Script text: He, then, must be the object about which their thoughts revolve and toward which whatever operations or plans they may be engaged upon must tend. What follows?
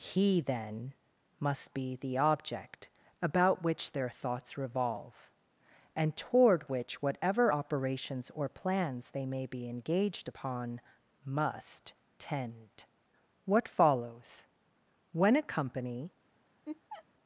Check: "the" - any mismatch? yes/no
no